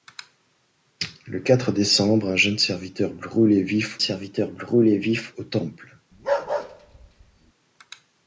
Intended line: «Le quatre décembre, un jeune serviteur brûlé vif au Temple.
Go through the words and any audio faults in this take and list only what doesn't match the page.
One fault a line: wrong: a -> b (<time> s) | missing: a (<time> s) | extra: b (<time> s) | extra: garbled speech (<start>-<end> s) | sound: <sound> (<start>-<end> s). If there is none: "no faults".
extra: serviteur brûlé vif (4.0 s)
sound: bark (6.1-7.5 s)